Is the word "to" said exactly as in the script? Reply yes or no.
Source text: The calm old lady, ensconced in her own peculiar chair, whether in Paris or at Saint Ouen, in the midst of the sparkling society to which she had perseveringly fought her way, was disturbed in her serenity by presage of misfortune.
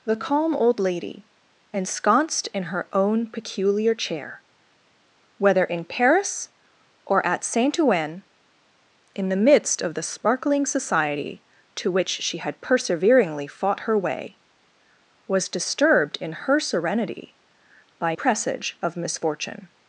yes